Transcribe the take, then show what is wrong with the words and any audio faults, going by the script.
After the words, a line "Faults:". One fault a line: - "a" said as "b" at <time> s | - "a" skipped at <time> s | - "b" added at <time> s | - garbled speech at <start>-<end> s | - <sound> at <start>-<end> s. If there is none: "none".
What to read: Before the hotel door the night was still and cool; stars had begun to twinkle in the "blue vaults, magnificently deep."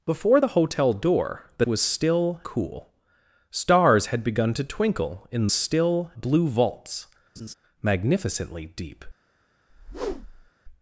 Before the hotel door the was still cool; stars had begun to twinkle in still "blue vaults, magnificently deep."
Faults:
- "night" skipped at 1.6 s
- "and" skipped at 2.4 s
- "the" said as "still" at 5.5 s
- laugh at 7.4-7.5 s
- whoosh at 9.7-10.5 s